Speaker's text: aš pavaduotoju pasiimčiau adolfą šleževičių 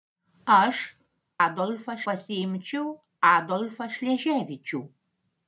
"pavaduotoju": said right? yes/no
no